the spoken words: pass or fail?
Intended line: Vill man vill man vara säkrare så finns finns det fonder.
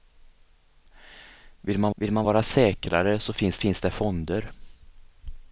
pass